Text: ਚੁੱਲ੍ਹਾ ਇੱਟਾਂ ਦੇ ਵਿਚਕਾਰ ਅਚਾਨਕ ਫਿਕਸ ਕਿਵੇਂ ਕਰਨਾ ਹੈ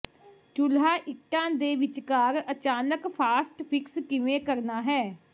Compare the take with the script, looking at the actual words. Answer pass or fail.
fail